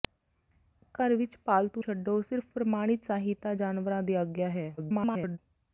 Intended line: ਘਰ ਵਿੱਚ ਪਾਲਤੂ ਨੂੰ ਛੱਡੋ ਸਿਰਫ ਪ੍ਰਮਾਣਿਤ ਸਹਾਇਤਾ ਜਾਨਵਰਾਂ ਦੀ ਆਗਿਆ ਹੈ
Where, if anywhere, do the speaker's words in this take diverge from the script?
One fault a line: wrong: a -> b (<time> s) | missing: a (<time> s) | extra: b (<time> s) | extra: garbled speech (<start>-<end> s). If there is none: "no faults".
missing: ਨੂੰ (1.8 s)
extra: garbled speech (4.8-5.4 s)